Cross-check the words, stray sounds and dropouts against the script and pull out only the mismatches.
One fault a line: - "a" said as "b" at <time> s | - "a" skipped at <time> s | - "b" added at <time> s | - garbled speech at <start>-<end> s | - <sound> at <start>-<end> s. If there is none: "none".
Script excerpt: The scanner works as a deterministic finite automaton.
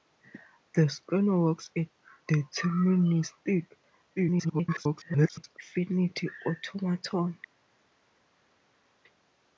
- "as" skipped at 1.7 s
- garbled speech at 4.2-5.6 s